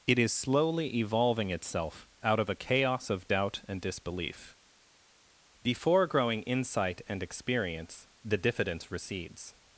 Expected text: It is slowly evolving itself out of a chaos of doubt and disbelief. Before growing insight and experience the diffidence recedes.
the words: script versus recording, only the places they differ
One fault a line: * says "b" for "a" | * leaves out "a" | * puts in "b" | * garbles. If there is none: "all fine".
all fine